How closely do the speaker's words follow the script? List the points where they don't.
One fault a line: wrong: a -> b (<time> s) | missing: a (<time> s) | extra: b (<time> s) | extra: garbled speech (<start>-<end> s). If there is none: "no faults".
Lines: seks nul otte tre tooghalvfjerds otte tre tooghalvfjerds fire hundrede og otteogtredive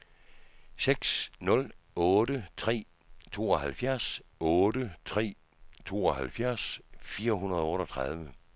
no faults